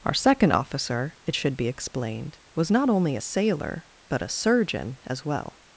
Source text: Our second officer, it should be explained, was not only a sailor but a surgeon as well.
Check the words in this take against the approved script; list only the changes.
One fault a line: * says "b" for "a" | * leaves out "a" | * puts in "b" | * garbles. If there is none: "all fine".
all fine